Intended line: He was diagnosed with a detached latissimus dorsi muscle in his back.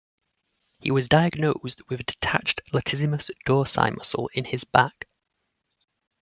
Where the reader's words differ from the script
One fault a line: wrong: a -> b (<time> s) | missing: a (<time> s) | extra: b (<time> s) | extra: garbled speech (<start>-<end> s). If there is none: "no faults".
no faults